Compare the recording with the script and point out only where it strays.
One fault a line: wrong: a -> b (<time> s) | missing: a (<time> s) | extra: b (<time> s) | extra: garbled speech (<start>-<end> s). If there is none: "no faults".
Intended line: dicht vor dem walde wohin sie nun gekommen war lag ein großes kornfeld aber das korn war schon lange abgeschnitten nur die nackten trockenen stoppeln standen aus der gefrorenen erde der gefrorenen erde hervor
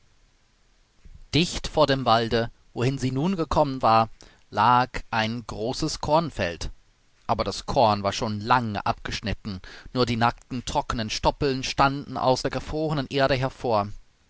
missing: der gefrorenen erde (13.3 s)